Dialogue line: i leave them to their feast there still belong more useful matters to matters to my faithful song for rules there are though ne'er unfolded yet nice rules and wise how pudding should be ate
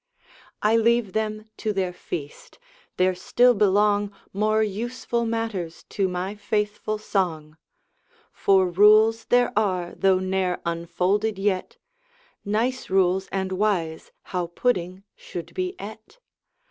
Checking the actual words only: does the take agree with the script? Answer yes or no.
no